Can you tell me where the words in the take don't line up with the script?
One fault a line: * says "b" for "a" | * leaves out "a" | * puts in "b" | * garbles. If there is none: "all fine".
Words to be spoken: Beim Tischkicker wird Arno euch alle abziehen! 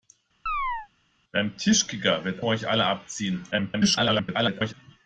* leaves out "Arno"
* garbles